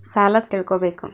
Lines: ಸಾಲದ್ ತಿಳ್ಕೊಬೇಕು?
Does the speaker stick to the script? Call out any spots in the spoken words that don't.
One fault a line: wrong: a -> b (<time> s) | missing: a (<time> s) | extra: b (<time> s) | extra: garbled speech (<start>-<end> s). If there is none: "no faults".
no faults